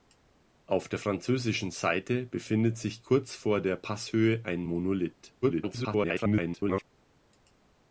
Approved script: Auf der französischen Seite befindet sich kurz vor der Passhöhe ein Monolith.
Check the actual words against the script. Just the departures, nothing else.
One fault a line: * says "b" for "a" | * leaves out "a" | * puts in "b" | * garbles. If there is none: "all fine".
* garbles